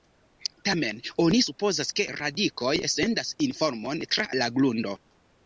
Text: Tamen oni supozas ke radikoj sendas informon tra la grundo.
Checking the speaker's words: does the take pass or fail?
pass